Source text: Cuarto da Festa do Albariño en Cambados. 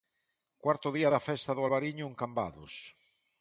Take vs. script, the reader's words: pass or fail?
fail